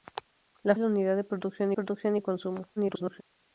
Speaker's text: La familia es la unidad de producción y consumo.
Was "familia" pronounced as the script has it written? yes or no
no